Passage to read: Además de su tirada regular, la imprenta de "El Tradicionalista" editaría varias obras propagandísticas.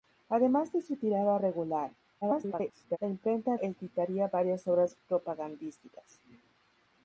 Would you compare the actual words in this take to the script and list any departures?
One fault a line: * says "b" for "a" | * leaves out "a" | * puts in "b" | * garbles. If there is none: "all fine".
* garbles
* leaves out "de El Tradicionalista"